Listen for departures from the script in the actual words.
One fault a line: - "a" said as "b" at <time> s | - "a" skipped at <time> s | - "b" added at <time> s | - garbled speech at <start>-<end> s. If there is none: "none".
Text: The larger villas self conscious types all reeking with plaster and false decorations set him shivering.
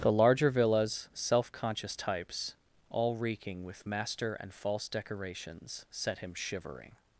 - "plaster" said as "master" at 3.9 s